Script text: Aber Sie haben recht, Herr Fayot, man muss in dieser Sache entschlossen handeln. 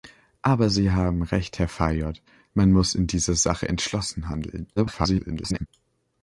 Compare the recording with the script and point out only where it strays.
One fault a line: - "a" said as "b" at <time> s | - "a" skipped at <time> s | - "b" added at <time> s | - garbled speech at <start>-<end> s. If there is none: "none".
- garbled speech at 4.8-5.7 s